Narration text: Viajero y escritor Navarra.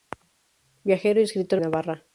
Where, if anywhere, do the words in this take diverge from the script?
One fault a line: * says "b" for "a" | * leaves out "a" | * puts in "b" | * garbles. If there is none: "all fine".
all fine